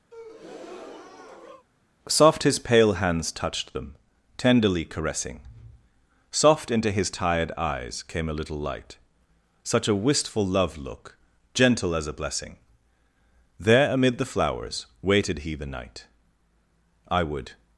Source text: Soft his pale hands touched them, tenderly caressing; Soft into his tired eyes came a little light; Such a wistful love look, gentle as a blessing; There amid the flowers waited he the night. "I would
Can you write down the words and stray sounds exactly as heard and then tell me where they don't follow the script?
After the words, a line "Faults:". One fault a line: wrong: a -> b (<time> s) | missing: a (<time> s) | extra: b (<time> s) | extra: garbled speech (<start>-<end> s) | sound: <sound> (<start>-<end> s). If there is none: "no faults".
Soft his pale hands touched them, tenderly caressing; Soft into his tired eyes came a little light; Such a wistful love look, gentle as a blessing; There amid the flowers waited he the night. "I would
Faults:
sound: breath (0.1-1.7 s)